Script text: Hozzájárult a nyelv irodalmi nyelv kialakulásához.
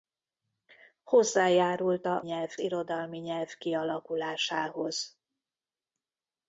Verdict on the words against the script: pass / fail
pass